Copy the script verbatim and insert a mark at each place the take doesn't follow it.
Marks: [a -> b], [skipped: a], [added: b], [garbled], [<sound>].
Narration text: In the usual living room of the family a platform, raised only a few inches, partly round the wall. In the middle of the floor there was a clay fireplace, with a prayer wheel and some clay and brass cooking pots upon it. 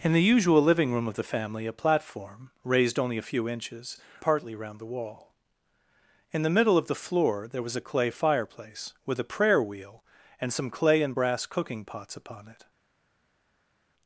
In the usual living room of the family a platform, raised only a few inches, partly round the wall. In the middle of the floor there was a clay fireplace, with a prayer wheel and some clay and brass cooking pots upon it.